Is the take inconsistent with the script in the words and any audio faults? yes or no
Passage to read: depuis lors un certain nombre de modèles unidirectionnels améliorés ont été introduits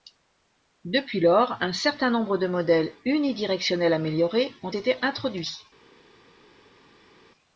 no